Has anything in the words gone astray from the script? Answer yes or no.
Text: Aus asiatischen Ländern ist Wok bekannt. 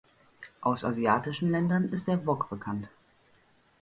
yes